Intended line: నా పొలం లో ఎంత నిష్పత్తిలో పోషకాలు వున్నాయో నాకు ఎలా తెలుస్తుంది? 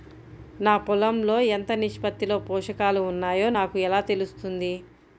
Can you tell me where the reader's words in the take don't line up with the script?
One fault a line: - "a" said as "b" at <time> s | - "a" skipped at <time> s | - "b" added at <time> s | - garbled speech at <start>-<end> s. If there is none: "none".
none